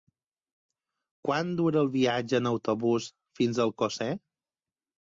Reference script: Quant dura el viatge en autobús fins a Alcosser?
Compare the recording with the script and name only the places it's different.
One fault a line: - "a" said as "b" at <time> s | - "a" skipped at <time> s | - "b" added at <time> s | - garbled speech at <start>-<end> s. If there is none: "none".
none